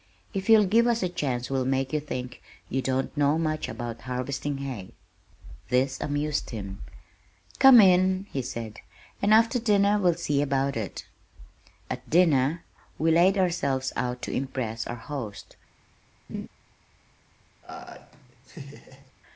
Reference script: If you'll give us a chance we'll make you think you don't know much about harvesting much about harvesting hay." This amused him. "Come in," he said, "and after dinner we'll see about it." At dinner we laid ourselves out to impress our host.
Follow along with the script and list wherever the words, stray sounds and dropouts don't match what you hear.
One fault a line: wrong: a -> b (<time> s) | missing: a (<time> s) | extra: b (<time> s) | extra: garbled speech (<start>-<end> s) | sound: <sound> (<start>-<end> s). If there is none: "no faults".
missing: much about harvesting (4.6 s)
sound: laugh (16.3-16.5 s)
sound: laugh (17.6-19.1 s)